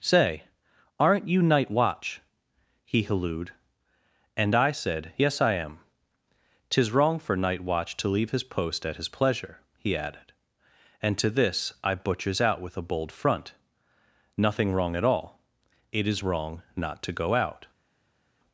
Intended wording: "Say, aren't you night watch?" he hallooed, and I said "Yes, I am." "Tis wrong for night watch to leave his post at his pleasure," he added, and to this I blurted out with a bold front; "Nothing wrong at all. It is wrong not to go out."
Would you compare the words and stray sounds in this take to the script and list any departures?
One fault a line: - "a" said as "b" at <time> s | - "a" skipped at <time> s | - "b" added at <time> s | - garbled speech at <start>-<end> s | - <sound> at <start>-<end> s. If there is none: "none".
- "blurted" said as "butchers" at 11.9 s